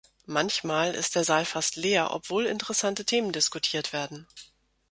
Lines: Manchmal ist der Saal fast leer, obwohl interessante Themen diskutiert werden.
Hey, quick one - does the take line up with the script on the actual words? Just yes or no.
yes